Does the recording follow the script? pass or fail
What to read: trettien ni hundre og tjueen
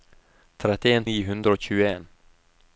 pass